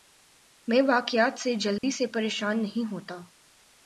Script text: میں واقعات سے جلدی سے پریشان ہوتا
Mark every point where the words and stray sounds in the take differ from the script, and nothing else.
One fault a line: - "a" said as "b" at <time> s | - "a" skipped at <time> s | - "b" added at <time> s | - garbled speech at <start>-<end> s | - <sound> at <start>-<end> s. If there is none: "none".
- dropout at 1.8-1.8 s
- "نہیں" added at 2.6 s